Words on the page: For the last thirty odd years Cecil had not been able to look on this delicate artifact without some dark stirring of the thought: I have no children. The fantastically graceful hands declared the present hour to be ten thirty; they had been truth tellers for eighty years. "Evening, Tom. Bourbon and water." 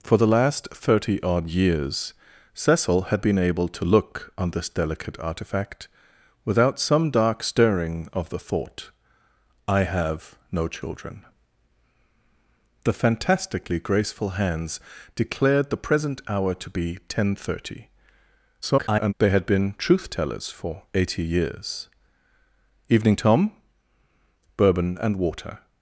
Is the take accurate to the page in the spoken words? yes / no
no